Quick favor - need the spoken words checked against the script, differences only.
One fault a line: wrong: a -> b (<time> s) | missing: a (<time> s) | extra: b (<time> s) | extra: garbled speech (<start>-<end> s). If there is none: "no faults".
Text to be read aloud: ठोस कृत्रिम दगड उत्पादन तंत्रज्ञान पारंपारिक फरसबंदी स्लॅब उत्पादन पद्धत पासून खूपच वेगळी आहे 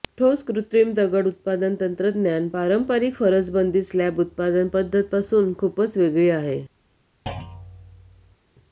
no faults